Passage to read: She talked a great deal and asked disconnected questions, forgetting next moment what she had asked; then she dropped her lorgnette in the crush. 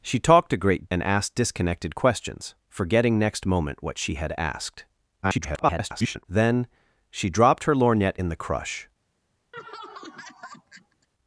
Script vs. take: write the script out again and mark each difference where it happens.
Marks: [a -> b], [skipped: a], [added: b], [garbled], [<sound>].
She talked a great [skipped: deal] and asked disconnected questions, forgetting next moment what she had asked; [garbled] then she dropped her lorgnette in the crush. [laugh]